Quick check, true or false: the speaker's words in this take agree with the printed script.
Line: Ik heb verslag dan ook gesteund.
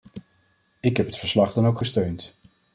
false